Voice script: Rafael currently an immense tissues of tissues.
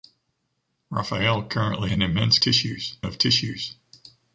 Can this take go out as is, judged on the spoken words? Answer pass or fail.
pass